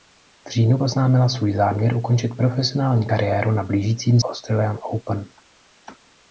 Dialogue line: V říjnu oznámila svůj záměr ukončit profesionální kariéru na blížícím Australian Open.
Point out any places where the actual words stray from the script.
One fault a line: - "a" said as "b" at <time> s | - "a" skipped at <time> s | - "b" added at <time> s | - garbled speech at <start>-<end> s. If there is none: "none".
none